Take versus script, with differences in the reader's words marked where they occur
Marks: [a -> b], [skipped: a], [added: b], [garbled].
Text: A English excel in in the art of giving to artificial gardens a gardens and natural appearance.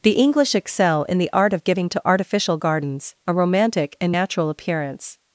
[A -> The] English excel in [skipped: in] the art of giving to artificial gardens a [gardens -> romantic] and natural appearance.